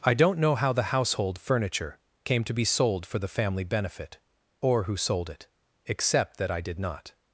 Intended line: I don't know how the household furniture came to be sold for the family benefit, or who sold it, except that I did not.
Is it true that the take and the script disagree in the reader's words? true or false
false